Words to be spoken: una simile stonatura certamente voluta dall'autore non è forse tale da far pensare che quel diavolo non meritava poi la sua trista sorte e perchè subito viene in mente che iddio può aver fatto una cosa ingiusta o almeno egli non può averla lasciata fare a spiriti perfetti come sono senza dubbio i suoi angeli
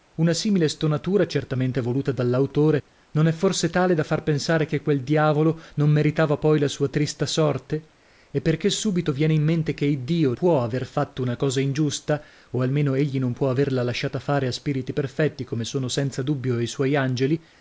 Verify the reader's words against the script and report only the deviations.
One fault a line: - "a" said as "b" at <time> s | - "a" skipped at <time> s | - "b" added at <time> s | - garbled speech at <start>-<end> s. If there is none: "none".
none